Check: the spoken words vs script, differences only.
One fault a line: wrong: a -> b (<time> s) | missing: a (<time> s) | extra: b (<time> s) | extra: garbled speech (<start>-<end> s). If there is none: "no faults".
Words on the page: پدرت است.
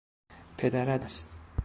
no faults